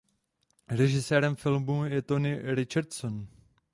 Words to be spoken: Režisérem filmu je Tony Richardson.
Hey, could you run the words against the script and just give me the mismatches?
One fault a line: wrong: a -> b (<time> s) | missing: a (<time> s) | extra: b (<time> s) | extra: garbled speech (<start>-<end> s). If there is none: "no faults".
no faults